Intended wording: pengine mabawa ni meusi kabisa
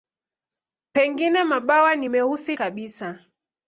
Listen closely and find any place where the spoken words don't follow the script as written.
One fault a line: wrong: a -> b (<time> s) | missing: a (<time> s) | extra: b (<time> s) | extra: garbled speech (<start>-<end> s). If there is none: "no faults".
no faults